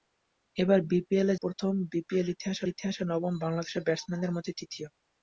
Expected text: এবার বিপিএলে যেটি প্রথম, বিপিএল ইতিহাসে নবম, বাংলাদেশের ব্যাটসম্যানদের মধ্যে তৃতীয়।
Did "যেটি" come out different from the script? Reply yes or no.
yes